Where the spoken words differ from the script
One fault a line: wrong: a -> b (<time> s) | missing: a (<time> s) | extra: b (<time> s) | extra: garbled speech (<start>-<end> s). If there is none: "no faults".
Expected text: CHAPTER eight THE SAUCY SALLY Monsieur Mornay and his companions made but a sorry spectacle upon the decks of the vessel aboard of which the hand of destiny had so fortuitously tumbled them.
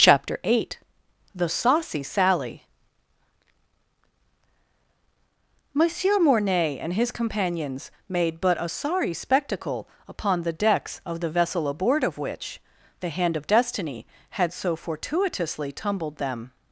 no faults